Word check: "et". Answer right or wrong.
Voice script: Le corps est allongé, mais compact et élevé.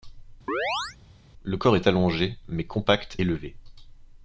wrong